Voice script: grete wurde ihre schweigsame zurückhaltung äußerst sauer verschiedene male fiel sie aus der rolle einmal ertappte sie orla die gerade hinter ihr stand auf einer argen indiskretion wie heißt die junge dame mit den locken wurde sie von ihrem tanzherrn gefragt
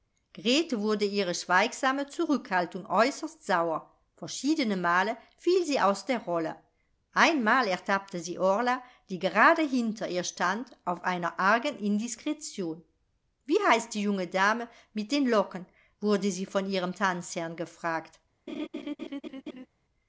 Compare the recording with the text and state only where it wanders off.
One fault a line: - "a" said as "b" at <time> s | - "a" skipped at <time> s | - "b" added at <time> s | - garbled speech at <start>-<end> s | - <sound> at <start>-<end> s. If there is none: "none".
- laugh at 18.5-19.7 s